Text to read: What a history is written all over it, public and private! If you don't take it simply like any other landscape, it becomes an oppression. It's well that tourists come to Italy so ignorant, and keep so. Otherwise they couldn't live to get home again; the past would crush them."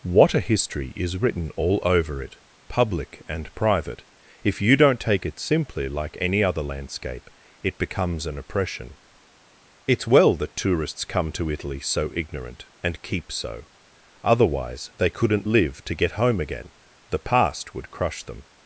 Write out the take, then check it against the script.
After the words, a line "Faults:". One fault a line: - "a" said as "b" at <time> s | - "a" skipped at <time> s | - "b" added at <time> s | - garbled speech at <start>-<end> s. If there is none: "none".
What a history is written all over it, public and private! If you don't take it simply like any other landscape, it becomes an oppression. It's well that tourists come to Italy so ignorant, and keep so. Otherwise they couldn't live to get home again; the past would crush them."
Faults:
none